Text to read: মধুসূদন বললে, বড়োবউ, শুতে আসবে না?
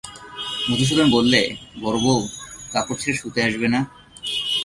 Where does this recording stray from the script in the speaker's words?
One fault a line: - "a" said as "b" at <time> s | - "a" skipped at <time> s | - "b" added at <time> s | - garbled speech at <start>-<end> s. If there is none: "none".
- "কাপড় ছেড়ে" added at 2.7 s